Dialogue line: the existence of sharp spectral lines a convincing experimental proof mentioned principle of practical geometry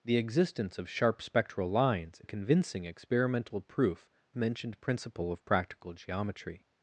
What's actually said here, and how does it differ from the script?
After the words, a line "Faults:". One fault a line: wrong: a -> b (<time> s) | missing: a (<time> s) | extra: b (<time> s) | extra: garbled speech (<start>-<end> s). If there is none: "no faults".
the existence of sharp spectral lines a convincing experimental proof mentioned principle of practical geometry
Faults:
no faults